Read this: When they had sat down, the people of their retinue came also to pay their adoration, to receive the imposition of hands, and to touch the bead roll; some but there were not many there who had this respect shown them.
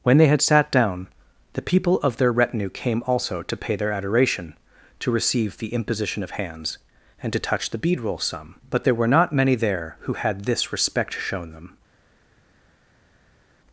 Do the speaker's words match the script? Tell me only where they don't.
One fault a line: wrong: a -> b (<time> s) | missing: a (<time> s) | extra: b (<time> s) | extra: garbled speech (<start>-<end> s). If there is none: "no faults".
no faults